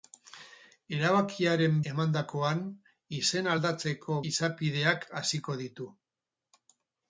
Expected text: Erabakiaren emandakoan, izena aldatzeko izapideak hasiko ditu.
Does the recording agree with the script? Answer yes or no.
yes